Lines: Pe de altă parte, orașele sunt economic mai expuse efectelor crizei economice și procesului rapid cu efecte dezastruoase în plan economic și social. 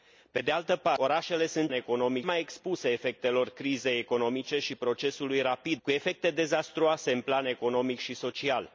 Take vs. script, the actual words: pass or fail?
pass